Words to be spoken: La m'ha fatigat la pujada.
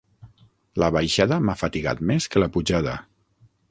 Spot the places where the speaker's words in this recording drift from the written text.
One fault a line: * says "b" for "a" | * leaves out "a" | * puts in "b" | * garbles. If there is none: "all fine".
* puts in "baixada"
* puts in "més que"